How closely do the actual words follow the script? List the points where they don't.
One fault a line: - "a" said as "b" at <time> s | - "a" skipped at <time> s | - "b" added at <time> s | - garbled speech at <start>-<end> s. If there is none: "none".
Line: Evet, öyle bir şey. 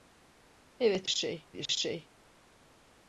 - "öyle" said as "şey" at 1.1 s